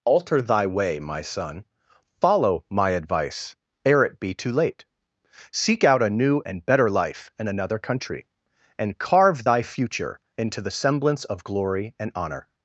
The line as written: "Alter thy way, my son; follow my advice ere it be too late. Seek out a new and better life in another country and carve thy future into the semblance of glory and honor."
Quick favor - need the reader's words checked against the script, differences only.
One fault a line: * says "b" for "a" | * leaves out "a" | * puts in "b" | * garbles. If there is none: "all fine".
all fine